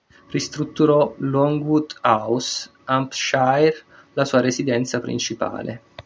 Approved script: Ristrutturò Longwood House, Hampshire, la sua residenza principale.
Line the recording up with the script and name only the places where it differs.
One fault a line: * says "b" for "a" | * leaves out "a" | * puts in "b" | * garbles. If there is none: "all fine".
all fine